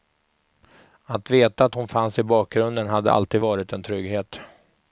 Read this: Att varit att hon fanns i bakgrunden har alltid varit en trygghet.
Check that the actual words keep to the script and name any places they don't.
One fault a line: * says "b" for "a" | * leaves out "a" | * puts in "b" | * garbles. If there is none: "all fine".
* says "veta" for "varit"
* says "hade" for "har"